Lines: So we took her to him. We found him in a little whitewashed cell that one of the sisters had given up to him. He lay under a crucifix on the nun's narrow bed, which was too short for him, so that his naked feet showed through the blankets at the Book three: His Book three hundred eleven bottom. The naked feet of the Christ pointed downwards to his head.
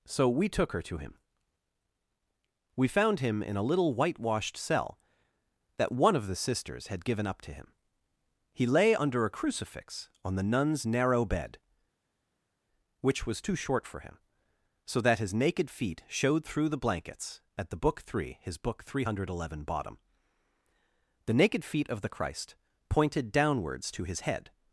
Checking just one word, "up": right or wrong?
right